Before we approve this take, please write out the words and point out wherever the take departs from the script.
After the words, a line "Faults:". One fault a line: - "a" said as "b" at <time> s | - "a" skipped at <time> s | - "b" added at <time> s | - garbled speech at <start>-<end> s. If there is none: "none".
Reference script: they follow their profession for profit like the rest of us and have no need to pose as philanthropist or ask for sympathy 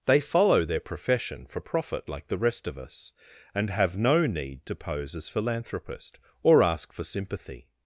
they follow their profession for profit like the rest of us and have no need to pose as philanthropist or ask for sympathy
Faults:
none